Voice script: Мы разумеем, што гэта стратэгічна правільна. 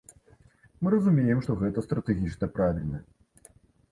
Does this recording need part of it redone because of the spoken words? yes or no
no